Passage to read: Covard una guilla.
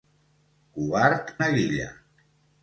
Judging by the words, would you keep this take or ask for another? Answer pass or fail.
pass